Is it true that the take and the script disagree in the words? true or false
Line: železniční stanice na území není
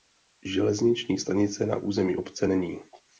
true